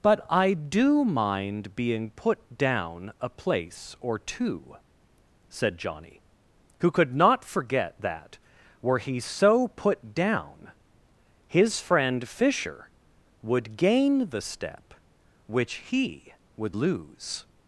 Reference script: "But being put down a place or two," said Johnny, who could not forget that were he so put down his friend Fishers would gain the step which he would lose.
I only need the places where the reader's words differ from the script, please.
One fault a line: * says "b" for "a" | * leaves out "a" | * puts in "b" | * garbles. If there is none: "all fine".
* puts in "I do mind"
* says "Fisher" for "Fishers"